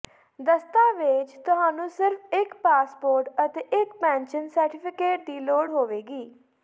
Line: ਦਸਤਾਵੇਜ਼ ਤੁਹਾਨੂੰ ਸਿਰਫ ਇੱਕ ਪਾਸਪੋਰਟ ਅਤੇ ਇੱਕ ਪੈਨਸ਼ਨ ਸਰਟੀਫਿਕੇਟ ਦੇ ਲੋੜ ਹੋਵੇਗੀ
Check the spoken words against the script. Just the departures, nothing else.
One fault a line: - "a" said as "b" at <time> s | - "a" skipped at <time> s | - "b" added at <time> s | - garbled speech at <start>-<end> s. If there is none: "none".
- "ਦੇ" said as "ਦੀ" at 5.2 s